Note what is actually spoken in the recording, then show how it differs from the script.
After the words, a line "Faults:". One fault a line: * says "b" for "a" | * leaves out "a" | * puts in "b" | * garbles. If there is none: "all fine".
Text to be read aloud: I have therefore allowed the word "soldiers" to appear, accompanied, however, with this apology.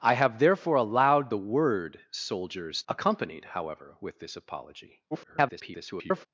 I have therefore allowed the word "soldiers" accompanied, however, with this apology. [garbled]
Faults:
* leaves out "to appear"
* garbles